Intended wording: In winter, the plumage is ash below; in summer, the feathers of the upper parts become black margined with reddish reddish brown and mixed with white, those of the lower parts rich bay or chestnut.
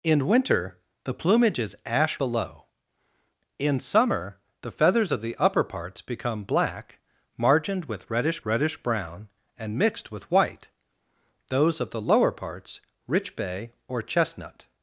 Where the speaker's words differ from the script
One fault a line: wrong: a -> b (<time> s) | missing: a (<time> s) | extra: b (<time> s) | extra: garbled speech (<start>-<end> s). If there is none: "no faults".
no faults